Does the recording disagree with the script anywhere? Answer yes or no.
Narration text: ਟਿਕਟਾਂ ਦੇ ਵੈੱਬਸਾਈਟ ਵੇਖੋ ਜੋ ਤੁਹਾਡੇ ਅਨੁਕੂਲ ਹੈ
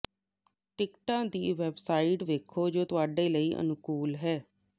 yes